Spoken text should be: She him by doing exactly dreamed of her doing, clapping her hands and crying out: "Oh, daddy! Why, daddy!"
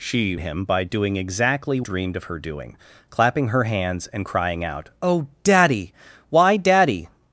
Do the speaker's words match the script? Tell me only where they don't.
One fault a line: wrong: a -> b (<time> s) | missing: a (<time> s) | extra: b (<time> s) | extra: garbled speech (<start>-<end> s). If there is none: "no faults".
no faults